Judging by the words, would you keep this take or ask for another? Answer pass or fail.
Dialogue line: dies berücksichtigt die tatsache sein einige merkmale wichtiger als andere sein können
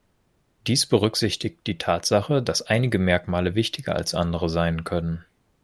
fail